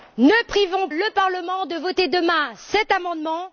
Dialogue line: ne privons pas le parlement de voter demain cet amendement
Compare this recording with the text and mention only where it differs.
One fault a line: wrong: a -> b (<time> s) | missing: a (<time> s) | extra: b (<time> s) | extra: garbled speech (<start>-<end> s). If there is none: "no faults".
missing: pas (0.9 s)